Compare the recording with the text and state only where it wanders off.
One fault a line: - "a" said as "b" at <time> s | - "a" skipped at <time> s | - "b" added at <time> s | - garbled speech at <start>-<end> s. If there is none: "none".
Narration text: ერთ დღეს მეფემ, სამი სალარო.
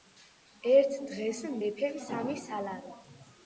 none